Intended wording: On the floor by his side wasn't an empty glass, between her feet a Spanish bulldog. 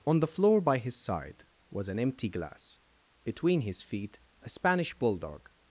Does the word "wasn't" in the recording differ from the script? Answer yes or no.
yes